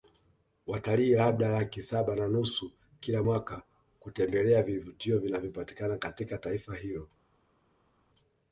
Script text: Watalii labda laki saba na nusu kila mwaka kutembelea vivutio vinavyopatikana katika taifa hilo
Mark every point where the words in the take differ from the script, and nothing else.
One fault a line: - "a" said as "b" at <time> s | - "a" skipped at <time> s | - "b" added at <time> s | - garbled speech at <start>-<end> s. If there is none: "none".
none